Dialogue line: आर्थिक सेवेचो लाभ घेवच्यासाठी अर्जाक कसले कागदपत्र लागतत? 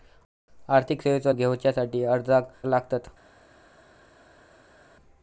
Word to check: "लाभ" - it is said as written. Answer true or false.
false